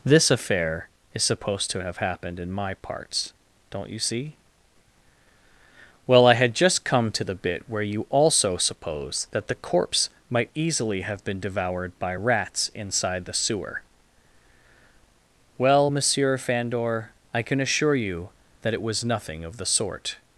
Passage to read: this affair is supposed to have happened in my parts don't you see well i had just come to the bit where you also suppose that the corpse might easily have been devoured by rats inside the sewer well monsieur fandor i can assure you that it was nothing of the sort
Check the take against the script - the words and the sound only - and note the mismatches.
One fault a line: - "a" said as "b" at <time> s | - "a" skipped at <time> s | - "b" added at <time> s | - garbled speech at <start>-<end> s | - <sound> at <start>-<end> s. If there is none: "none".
none